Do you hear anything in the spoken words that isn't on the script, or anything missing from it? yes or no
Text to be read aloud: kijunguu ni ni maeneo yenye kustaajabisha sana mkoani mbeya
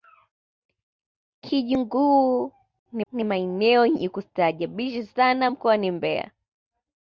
no